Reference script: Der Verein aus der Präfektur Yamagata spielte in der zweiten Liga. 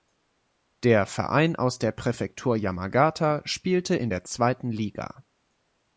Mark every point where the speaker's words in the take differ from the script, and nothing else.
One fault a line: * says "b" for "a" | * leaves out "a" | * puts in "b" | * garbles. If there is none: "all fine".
all fine